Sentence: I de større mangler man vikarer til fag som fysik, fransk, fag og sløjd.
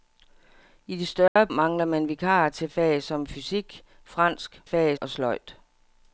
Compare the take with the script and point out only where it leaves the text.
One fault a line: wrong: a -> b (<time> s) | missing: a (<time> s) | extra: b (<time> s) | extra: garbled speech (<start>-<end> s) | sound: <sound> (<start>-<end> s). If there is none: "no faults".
sound: dropout (1.3-1.4 s)